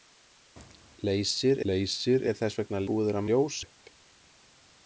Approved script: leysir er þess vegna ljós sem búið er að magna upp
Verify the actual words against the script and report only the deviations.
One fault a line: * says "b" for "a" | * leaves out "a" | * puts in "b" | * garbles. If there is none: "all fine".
* puts in "leysir"
* leaves out "ljós sem"
* says "ljós" for "magna"